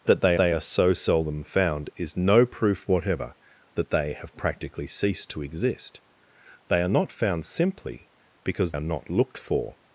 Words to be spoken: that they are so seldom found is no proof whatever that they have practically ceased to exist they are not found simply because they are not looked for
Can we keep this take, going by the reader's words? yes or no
no